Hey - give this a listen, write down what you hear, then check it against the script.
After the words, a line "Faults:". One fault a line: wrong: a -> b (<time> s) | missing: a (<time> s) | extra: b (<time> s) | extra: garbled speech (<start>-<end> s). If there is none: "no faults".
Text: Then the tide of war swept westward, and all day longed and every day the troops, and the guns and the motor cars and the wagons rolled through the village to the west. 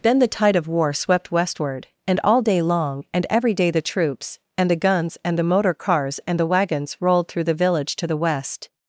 Then the tide of war swept westward, and all day long and every day the troops, and the guns and the motor cars and the wagons rolled through the village to the west.
Faults:
wrong: longed -> long (2.6 s)